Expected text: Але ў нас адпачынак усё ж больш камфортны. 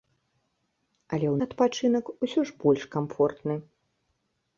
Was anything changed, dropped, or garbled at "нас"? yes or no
yes